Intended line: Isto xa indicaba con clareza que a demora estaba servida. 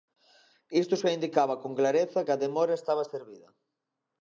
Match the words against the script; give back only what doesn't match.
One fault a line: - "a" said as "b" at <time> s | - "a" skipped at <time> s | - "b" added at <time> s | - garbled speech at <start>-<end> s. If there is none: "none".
none